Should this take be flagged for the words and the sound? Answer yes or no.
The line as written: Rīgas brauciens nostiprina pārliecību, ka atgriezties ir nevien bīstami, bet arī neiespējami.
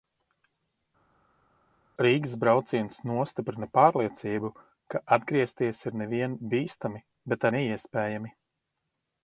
yes